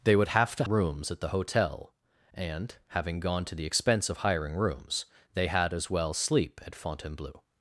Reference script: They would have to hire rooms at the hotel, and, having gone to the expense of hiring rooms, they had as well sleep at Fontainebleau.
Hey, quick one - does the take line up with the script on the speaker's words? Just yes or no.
no